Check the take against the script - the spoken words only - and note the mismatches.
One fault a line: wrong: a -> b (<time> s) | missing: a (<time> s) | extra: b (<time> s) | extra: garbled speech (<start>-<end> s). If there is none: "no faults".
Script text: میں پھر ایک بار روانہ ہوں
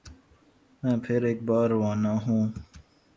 no faults